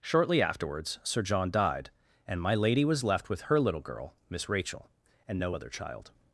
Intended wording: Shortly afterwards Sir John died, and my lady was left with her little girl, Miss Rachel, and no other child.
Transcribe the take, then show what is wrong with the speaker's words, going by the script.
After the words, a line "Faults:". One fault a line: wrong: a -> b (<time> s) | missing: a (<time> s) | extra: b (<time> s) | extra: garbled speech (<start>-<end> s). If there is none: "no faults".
Shortly afterwards Sir John died, and my lady was left with her little girl, Miss Rachel, and no other child.
Faults:
no faults